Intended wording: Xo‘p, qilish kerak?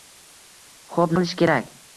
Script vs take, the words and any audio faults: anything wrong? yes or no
no